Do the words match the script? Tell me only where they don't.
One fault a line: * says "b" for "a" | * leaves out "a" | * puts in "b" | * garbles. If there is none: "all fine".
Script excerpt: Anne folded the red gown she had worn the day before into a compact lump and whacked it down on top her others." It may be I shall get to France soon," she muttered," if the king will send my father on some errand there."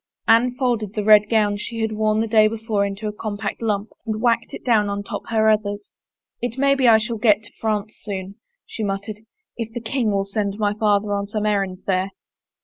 all fine